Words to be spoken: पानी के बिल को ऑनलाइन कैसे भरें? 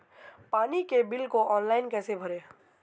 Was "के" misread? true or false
false